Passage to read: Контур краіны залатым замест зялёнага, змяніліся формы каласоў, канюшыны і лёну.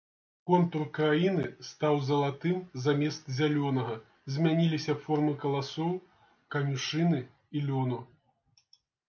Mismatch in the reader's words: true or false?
true